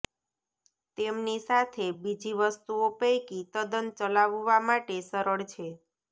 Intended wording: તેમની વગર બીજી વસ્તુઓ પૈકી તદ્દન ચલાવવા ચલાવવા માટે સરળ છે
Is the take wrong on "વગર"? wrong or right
wrong